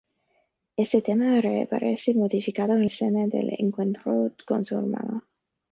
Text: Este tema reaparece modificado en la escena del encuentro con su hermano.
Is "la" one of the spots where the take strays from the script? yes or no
yes